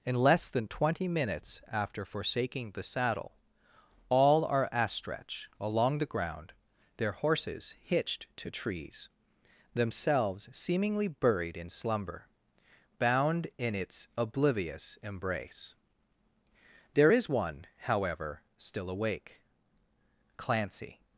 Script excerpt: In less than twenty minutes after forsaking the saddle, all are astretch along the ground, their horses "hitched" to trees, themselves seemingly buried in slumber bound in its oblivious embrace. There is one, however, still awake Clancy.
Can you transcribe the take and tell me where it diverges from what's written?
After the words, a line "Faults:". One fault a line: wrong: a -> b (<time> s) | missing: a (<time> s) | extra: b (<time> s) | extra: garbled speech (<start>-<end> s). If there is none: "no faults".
In less than twenty minutes after forsaking the saddle, all are astretch along the ground, their horses "hitched" to trees, themselves seemingly buried in slumber bound in its oblivious embrace. There is one, however, still awake Clancy.
Faults:
no faults